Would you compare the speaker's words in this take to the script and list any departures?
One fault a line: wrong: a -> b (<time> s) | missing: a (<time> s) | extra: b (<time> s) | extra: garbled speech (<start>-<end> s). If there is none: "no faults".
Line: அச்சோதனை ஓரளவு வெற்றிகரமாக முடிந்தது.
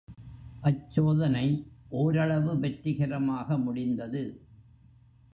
no faults